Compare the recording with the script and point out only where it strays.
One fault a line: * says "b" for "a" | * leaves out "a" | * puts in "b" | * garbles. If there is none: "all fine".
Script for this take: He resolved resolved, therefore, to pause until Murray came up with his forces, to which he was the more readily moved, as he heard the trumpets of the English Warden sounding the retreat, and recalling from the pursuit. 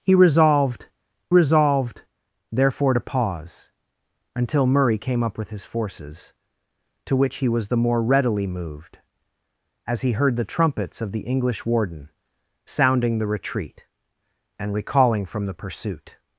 all fine